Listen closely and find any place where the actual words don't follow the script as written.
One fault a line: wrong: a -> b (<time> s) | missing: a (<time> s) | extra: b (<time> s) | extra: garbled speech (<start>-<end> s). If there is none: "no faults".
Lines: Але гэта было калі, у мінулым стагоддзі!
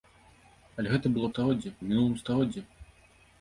wrong: калі -> стагоддзі (1.3 s)